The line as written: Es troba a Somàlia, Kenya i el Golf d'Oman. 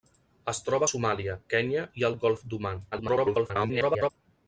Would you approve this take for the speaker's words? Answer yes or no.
no